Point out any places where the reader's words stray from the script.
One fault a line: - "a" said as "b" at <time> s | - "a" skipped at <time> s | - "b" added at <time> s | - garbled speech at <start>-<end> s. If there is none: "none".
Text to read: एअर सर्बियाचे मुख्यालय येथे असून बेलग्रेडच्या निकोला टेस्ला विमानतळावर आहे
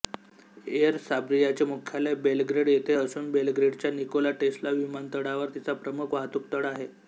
- "बेलग्रेड" added at 2.2 s
- "तिचा प्रमुख वाहतूकतळ" added at 5.5 s